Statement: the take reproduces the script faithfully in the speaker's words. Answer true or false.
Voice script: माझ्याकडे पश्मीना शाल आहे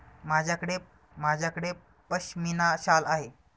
false